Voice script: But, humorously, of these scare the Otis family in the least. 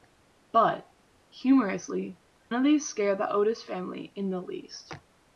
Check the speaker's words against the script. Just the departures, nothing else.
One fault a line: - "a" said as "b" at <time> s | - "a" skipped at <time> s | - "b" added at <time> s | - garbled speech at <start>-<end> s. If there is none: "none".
none